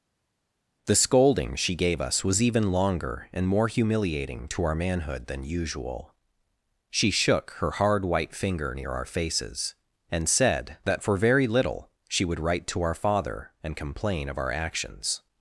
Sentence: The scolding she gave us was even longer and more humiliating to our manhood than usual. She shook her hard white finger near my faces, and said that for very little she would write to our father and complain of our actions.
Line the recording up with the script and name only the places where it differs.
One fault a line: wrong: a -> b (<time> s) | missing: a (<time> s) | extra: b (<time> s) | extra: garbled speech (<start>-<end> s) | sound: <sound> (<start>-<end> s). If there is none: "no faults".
wrong: my -> our (8.9 s)